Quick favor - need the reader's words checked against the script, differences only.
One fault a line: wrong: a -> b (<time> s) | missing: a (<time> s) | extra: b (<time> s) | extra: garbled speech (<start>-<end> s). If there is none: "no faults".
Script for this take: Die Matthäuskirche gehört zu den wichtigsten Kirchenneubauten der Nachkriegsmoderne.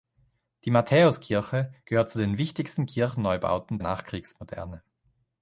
missing: der (3.8 s)